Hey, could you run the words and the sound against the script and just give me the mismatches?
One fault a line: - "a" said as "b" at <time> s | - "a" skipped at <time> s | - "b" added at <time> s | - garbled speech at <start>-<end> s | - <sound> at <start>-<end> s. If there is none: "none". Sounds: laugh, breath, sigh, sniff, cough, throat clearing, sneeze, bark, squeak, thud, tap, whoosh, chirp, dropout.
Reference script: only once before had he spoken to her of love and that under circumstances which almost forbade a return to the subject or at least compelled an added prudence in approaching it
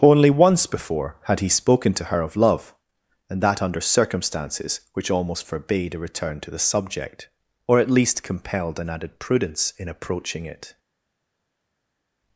none